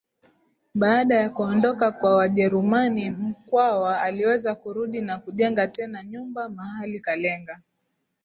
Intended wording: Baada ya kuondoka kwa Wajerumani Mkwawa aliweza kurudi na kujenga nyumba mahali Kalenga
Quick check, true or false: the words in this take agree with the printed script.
false